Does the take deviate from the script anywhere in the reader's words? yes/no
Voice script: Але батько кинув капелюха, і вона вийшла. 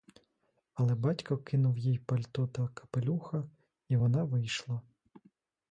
yes